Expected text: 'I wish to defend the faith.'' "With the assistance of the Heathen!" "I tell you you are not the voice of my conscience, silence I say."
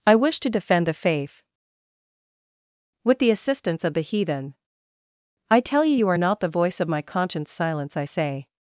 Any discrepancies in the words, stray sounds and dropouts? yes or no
no